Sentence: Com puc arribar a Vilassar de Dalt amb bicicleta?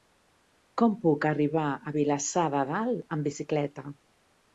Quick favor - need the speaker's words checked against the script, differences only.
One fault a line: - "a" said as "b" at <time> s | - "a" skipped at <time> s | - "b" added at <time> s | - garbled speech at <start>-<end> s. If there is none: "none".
none